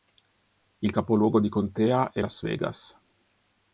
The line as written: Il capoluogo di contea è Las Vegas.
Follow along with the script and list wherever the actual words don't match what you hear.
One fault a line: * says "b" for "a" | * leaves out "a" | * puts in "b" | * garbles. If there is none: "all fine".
all fine